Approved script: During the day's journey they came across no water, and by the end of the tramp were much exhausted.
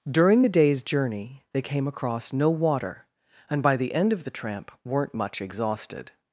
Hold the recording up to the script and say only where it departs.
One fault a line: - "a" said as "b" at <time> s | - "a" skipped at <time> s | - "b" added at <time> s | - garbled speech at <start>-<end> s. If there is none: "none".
- "were" said as "weren't" at 4.8 s